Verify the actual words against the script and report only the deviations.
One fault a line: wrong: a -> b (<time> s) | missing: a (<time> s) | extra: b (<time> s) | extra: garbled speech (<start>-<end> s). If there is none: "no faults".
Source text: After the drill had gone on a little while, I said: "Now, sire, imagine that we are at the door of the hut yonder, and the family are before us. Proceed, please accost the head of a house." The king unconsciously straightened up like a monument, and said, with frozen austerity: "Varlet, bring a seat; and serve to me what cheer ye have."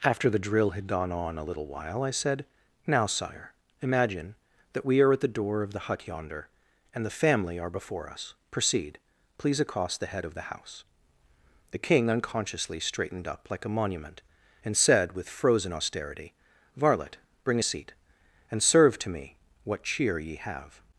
wrong: a -> the (10.4 s)